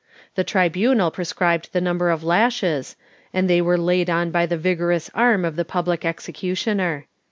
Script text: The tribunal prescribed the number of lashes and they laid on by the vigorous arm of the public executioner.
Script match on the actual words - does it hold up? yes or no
no